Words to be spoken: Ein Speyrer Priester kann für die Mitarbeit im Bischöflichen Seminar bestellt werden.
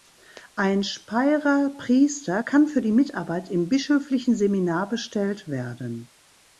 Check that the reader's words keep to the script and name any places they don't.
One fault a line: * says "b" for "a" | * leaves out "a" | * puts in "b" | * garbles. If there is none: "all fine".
all fine